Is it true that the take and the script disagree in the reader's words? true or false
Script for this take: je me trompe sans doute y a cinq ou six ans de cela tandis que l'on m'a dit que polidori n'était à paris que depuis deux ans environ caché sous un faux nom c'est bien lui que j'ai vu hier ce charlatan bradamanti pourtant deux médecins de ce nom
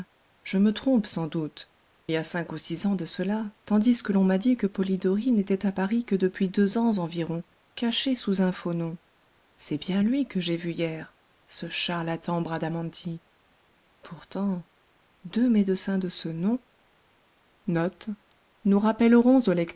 false